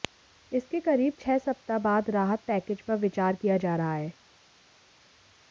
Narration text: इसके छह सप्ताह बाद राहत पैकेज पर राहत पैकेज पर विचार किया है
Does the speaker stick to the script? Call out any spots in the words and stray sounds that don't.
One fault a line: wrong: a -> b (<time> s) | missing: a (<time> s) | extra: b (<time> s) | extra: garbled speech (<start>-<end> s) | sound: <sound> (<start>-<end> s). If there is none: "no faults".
extra: करीब (0.8 s)
wrong: राहत पैकेज पर विचार किया -> विचार किया जा रहा (3.0 s)